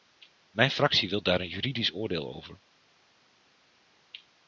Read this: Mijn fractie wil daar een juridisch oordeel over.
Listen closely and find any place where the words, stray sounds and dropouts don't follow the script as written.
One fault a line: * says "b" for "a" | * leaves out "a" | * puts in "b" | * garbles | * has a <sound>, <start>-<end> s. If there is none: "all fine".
all fine